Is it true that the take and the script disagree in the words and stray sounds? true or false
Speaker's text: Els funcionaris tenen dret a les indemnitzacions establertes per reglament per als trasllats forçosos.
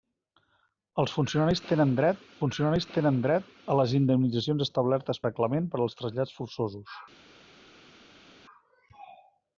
true